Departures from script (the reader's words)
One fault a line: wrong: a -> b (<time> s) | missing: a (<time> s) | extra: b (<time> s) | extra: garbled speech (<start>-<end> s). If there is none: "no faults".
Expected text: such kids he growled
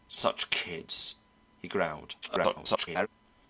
extra: garbled speech (2.2-3.1 s)